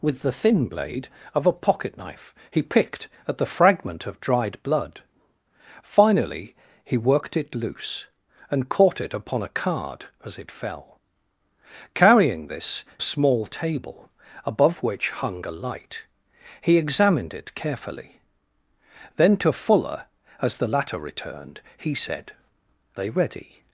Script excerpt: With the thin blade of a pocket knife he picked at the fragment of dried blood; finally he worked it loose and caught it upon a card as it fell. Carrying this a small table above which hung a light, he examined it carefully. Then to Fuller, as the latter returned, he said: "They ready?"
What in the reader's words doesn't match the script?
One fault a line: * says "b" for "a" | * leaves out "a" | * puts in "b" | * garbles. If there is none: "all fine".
all fine